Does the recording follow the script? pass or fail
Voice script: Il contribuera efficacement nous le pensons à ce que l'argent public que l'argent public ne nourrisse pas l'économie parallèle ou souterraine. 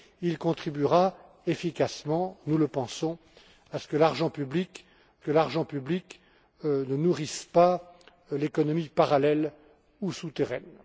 pass